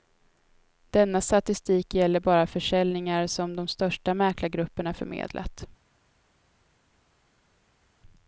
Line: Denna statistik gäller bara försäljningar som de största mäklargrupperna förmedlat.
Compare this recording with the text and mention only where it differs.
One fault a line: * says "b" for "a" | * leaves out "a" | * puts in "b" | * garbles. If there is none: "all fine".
all fine